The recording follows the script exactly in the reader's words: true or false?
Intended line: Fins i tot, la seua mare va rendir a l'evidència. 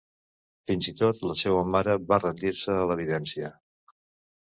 false